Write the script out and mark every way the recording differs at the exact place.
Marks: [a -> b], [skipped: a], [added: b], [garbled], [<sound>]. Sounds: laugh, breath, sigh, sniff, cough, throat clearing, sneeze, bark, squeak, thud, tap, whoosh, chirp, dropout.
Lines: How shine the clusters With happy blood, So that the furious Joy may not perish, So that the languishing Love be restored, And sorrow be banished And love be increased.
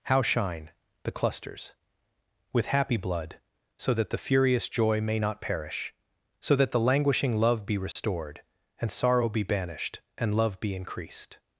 How shine the clusters With happy blood, So that the furious Joy may not perish, So that the languishing Love be restored, [dropout] And sorrow be banished And love be increased.